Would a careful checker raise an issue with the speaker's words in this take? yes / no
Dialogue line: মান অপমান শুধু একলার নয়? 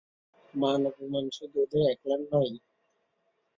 yes